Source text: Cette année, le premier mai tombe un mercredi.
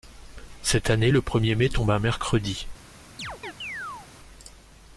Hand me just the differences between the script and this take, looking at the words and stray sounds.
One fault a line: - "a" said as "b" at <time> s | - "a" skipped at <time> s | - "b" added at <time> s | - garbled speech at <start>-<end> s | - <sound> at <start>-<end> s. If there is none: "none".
- chirp at 3.2-4.1 s